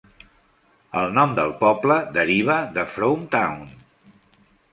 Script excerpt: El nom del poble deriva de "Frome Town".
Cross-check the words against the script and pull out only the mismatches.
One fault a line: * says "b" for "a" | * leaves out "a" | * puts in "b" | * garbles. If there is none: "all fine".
all fine